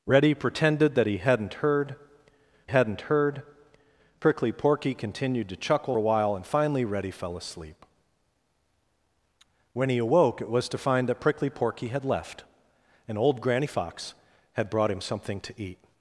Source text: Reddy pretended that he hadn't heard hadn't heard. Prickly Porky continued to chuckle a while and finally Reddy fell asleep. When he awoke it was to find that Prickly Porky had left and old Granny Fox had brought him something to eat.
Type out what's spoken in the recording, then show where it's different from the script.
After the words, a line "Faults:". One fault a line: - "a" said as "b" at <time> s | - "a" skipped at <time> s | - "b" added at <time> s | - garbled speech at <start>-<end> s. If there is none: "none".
Reddy pretended that he hadn't heard hadn't heard. Prickly Porky continued to chuckle a while and finally Reddy fell asleep. When he awoke it was to find that Prickly Porky had left and old Granny Fox had brought him something to eat.
Faults:
none